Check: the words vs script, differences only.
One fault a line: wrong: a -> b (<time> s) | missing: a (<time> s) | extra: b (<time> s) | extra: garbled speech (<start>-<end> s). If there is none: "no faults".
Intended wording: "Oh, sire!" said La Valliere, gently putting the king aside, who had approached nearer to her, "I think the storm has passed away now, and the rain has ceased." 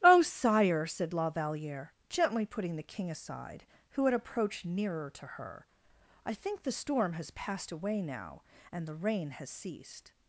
no faults